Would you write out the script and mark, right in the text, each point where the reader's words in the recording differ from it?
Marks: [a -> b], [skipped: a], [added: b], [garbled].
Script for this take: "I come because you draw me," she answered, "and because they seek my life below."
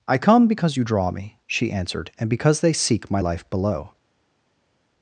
"I come because you draw me," she answered, "and because they seek my life below."